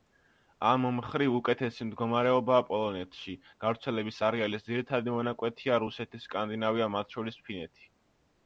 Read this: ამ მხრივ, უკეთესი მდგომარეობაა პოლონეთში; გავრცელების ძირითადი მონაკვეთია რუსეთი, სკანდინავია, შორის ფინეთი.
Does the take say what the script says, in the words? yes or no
no